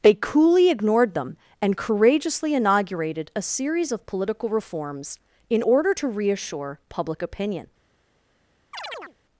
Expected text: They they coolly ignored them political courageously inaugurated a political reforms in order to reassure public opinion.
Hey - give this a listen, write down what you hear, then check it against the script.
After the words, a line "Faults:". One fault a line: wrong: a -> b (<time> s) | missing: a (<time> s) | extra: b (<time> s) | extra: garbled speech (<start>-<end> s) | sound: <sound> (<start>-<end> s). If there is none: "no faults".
They coolly ignored them and courageously inaugurated a series of political reforms in order to reassure public opinion.
Faults:
missing: they (0.1 s)
wrong: political -> and (1.6 s)
extra: series of (3.4 s)
sound: chirp (8.7-9.2 s)